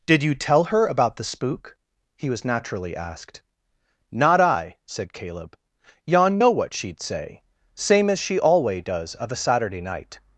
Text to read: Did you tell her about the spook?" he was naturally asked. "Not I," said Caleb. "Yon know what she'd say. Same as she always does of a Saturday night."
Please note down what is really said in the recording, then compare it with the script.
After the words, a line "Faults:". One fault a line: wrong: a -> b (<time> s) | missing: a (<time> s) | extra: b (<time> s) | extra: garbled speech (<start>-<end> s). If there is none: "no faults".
Did you tell her about the spook?" he was naturally asked. "Not I," said Caleb. "Yon know what she'd say. Same as she alway does of a Saturday night."
Faults:
wrong: always -> alway (8.4 s)